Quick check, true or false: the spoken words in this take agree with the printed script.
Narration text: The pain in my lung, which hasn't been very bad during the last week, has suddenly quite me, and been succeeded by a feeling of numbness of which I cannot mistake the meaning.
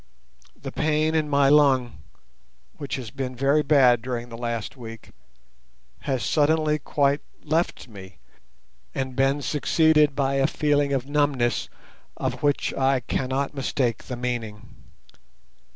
false